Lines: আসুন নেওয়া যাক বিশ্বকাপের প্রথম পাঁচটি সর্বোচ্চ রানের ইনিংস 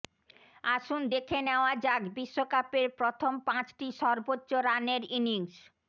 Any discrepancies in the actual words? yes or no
yes